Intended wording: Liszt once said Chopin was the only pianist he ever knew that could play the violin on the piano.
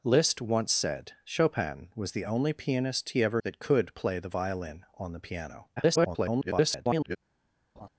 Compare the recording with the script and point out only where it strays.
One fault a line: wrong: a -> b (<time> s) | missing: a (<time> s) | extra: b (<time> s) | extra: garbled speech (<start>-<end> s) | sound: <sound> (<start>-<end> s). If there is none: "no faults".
missing: knew (3.4 s)
extra: garbled speech (5.8-7.2 s)
sound: laugh (7.8-7.9 s)